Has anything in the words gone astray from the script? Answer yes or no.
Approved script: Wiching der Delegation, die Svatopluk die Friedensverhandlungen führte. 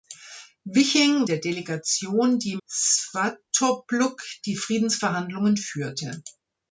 no